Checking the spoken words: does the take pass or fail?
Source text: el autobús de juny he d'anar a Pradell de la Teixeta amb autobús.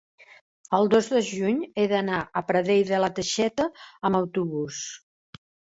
fail